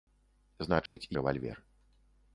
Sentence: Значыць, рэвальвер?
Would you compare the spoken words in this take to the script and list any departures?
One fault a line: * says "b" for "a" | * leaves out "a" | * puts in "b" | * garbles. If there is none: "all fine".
all fine